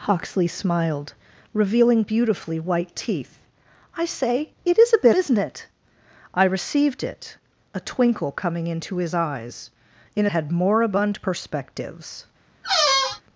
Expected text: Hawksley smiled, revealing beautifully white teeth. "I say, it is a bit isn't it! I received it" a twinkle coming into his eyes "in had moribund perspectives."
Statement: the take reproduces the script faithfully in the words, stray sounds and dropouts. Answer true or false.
false